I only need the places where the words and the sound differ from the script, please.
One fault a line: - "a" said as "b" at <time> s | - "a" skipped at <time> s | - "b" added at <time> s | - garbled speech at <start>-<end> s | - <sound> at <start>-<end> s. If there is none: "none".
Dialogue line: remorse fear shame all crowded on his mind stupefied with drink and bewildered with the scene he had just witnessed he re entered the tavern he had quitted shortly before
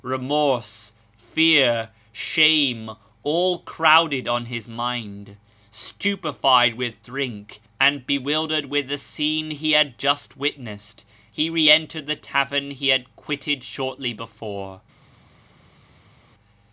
none